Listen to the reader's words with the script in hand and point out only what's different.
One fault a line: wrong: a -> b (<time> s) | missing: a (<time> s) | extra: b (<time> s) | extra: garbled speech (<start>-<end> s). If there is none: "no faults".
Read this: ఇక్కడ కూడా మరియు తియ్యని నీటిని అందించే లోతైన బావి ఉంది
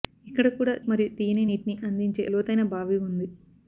no faults